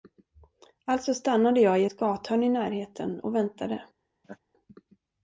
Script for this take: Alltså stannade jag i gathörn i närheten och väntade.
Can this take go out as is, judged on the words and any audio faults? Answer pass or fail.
fail